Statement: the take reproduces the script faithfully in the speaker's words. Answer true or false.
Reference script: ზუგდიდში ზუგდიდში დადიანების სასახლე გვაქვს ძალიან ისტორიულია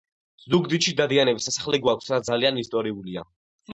false